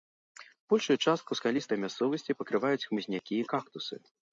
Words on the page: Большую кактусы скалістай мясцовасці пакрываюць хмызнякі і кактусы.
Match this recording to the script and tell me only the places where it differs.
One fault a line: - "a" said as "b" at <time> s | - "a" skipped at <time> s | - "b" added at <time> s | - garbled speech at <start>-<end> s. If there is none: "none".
- "кактусы" said as "частку" at 1.1 s